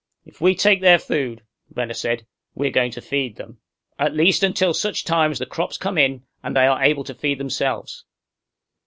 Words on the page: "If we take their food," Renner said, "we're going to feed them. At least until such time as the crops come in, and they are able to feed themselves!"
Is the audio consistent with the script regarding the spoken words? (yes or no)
yes